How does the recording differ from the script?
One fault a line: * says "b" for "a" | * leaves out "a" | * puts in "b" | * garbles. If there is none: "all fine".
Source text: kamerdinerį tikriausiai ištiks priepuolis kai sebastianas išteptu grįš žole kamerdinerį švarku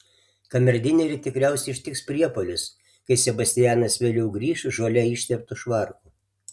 * says "vėliau" for "išteptu"
* says "išteptu" for "kamerdinerį"